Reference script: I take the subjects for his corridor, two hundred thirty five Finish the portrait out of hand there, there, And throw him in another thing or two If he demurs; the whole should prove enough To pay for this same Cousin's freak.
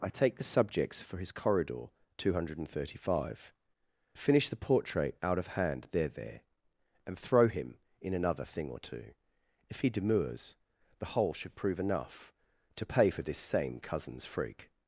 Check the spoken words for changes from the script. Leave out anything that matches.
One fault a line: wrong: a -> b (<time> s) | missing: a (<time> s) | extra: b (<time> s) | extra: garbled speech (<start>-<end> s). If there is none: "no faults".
no faults